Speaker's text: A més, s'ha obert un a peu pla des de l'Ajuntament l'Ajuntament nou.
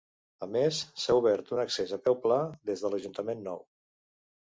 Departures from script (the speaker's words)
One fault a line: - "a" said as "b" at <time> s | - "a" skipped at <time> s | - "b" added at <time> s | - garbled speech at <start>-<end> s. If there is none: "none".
- "accés" added at 1.7 s
- "l'Ajuntament" skipped at 3.5 s